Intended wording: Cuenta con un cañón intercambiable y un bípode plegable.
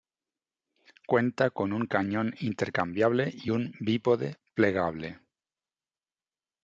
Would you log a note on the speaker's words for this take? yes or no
no